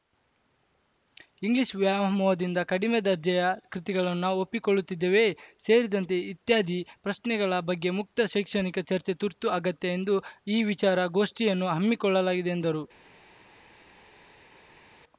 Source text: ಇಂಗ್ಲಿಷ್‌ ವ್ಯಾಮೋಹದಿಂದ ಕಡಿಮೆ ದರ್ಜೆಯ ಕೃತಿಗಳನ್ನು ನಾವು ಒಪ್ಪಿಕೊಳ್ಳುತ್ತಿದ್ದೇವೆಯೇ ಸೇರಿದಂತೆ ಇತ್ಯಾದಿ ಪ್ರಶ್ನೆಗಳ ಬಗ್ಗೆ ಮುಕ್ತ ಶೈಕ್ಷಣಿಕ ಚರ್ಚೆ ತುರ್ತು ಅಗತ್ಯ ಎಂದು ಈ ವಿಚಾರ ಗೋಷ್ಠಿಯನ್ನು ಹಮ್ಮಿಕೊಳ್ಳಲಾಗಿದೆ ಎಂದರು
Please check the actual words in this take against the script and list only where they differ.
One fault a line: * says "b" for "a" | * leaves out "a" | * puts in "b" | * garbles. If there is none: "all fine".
all fine